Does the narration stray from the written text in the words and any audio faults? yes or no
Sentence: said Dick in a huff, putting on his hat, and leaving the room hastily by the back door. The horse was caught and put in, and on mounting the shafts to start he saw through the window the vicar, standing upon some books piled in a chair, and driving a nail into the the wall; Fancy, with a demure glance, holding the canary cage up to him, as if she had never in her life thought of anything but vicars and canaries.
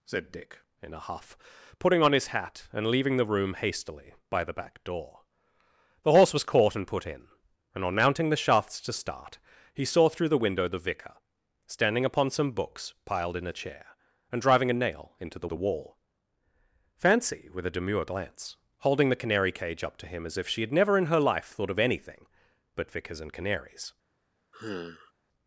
yes